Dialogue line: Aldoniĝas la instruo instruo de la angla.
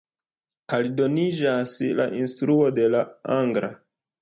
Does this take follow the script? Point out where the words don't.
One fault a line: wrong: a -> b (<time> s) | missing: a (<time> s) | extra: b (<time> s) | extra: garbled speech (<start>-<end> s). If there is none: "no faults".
missing: instruo (2.7 s)